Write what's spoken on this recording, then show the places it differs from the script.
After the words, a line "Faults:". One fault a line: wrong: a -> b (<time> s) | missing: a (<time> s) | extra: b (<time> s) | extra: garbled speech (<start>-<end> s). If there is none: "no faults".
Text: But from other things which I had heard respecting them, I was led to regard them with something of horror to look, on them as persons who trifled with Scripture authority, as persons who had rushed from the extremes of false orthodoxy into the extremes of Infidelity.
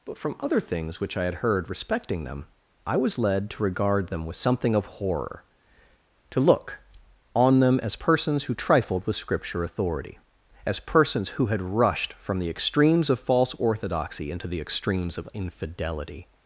But from other things which I had heard respecting them, I was led to regard them with something of horror to look, on them as persons who trifled with Scripture authority, as persons who had rushed from the extremes of false orthodoxy into the extremes of Infidelity.
Faults:
no faults